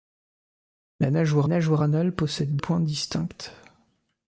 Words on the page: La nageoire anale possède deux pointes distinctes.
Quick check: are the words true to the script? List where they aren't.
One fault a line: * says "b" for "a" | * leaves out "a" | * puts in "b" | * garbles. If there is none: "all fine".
* puts in "nageoire"
* leaves out "deux"